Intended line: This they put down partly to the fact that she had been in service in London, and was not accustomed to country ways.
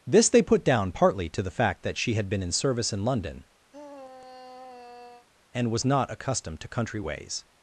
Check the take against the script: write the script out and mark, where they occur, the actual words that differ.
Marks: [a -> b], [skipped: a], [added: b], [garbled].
This they put down partly to the fact that she had been in service in London, and was not accustomed to country ways.